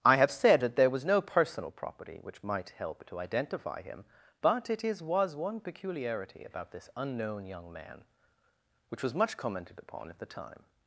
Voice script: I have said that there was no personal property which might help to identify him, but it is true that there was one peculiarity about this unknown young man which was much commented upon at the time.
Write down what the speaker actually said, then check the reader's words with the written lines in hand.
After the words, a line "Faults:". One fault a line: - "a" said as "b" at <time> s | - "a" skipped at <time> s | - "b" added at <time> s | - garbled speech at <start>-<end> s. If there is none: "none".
I have said that there was no personal property which might help to identify him, but it is was one peculiarity about this unknown young man which was much commented upon at the time.
Faults:
- "true that there" skipped at 5.0 s